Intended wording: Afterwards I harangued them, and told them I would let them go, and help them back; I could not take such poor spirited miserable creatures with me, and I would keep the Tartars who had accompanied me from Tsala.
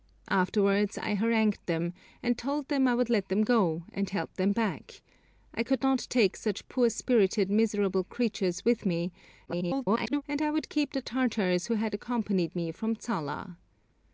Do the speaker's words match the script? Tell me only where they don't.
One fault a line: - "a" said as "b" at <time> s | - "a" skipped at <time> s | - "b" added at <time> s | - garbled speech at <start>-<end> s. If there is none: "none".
- garbled speech at 9.5-10.2 s